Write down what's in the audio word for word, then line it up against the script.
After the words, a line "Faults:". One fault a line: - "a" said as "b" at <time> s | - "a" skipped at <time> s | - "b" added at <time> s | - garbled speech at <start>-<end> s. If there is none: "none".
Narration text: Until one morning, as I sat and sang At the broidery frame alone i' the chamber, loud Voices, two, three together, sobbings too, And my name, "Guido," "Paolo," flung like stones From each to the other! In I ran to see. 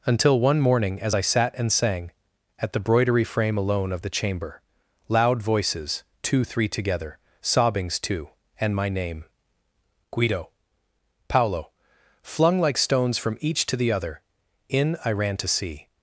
Until one morning, as I sat and sang At the broidery frame alone of' the chamber, loud Voices, two, three together, sobbings too, And my name, "Guido," "Paolo," flung like stones From each to the other! In I ran to see.
Faults:
- "i" said as "of" at 3.9 s